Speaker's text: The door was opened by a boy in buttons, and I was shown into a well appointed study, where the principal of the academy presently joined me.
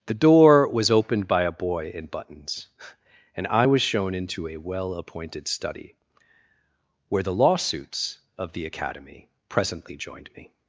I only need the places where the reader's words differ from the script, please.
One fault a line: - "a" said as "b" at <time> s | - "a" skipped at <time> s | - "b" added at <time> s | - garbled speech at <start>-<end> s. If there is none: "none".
- "principal" said as "lawsuits" at 7.3 s